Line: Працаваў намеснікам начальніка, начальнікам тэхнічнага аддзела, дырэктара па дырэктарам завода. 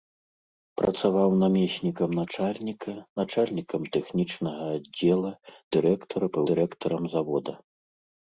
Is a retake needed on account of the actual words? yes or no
no